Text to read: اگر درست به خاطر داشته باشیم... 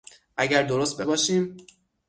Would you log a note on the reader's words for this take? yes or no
yes